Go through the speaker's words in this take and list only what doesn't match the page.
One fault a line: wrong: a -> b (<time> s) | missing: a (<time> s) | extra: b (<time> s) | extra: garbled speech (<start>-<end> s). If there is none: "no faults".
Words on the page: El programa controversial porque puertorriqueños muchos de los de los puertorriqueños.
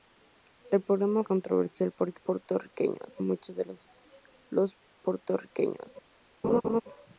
no faults